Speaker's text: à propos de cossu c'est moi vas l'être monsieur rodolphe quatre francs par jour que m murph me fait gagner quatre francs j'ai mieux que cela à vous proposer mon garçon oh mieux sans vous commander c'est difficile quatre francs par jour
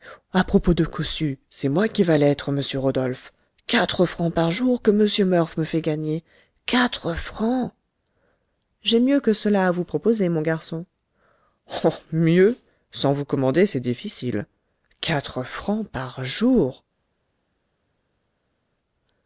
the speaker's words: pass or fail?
fail